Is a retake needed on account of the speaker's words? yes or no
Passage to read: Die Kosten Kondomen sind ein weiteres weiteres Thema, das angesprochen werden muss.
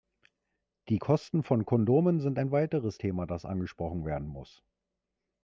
yes